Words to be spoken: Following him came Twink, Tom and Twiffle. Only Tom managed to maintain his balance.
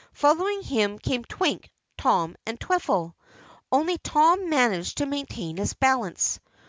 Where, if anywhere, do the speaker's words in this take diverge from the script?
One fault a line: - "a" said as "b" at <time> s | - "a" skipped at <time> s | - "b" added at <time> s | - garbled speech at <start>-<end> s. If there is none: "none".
none